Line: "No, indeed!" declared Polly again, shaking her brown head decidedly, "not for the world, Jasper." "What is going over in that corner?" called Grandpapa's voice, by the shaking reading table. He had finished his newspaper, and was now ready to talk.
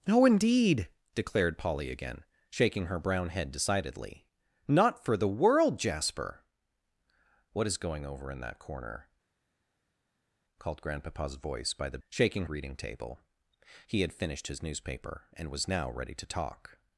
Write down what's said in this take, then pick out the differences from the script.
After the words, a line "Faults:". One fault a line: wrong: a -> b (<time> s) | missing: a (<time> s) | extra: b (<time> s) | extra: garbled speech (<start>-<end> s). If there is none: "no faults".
"No, indeed!" declared Polly again, shaking her brown head decidedly, "not for the world, Jasper." "What is going over in that corner?" called Grandpapa's voice, by the shaking reading table. He had finished his newspaper, and was now ready to talk.
Faults:
no faults